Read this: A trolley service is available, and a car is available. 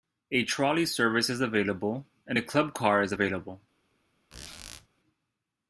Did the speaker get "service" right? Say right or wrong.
right